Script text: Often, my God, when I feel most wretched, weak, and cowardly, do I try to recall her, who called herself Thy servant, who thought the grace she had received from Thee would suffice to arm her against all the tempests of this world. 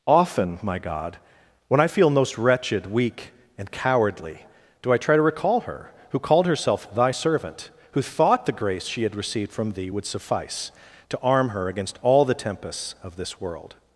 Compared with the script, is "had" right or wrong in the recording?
right